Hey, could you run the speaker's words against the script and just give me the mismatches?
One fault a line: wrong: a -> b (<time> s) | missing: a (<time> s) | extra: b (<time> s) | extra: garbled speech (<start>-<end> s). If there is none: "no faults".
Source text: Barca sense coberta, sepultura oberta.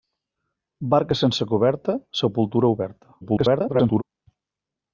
extra: garbled speech (3.2-4.0 s)